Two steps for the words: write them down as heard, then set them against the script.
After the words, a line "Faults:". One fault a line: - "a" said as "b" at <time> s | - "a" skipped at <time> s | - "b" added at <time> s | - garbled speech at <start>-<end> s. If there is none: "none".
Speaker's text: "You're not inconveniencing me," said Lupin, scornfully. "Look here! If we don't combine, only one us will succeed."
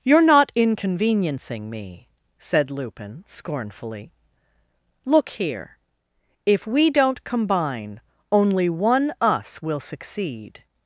"You're not inconveniencing me," said Lupin, scornfully. "Look here! If we don't combine, only one us will succeed."
Faults:
none